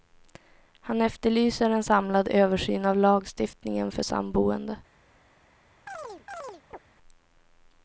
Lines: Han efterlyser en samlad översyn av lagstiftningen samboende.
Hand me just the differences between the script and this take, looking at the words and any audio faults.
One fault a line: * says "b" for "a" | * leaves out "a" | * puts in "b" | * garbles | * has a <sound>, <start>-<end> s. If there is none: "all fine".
* puts in "för"
* has a chirp, 5.9-6.8 s